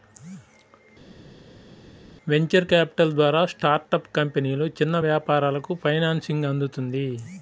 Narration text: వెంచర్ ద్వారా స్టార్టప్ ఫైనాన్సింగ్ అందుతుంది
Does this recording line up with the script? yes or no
no